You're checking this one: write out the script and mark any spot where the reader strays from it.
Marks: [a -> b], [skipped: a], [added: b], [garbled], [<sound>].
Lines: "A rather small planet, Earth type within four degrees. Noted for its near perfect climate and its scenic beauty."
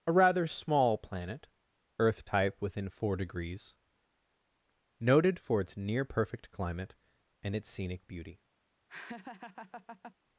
"A rather small planet, Earth type within four degrees. Noted for its near perfect climate and its scenic beauty." [laugh]